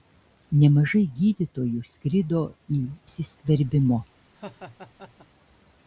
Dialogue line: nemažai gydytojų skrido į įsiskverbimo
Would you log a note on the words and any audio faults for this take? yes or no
yes